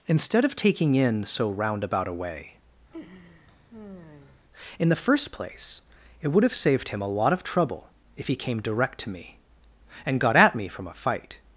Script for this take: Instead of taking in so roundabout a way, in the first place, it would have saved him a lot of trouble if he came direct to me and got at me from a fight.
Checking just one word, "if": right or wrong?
right